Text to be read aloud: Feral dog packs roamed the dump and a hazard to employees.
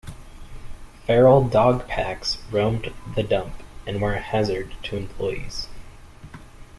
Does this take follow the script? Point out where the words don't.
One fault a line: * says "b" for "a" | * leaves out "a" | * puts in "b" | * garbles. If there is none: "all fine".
* puts in "were"